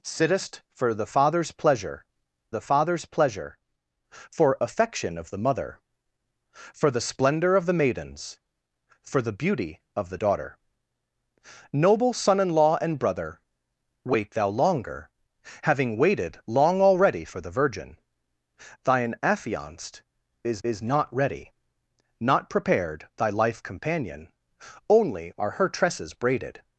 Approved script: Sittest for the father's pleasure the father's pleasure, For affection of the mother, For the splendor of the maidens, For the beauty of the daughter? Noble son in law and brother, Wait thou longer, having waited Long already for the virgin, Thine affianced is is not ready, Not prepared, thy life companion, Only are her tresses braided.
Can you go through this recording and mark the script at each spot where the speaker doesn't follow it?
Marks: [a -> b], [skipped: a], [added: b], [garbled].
Sittest for the father's pleasure the father's pleasure, For affection of the mother, For the splendor of the maidens, For the beauty of the daughter? Noble son in law and brother, Wait thou longer, having waited Long already for the virgin, Thine affianced is is not ready, Not prepared, thy life companion, Only are her tresses braided.